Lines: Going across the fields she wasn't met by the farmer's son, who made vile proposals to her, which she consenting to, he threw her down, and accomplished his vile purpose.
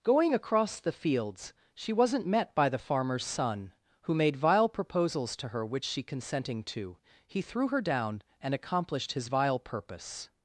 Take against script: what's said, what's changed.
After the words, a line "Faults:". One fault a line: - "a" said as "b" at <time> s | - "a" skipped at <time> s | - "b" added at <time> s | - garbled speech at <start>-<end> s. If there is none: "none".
Going across the fields she wasn't met by the farmer's son, who made vile proposals to her, which she consenting to, he threw her down, and accomplished his vile purpose.
Faults:
none